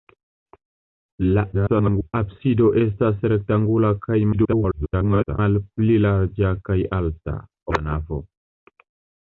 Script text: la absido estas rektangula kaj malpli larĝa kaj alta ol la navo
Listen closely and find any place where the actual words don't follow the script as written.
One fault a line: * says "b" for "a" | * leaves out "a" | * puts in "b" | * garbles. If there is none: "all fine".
* garbles
* garbles
* leaves out "ol"